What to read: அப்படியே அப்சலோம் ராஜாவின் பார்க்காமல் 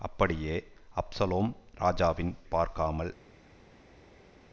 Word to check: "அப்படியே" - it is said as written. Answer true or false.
true